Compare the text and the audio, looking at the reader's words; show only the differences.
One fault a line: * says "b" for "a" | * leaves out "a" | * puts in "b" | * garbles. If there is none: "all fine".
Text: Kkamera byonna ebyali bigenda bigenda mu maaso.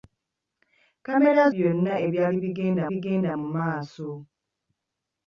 all fine